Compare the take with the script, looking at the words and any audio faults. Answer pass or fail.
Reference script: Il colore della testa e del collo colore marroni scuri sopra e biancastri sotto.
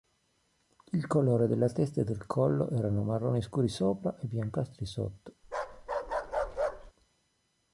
fail